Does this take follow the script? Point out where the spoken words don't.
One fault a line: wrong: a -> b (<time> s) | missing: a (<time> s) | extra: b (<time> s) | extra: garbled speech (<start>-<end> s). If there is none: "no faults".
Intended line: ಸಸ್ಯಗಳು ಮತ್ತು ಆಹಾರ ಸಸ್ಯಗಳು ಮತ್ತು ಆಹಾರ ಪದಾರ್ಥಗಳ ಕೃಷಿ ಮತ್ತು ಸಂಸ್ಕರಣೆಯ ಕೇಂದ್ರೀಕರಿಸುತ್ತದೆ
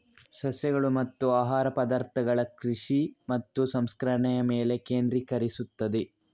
missing: ಸಸ್ಯಗಳು ಮತ್ತು ಆಹಾರ (1.7 s)
extra: ಮೇಲೆ (4.5 s)